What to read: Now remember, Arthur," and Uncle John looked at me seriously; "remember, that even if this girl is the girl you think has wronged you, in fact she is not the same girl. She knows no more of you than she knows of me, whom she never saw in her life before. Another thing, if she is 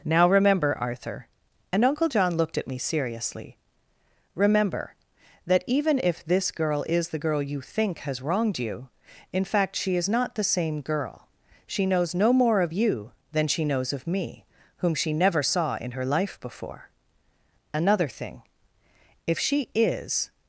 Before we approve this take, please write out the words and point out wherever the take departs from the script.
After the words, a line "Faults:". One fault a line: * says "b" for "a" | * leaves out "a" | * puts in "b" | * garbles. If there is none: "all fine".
Now remember, Arthur," and Uncle John looked at me seriously; "remember, that even if this girl is the girl you think has wronged you, in fact she is not the same girl. She knows no more of you than she knows of me, whom she never saw in her life before. Another thing, if she is
Faults:
all fine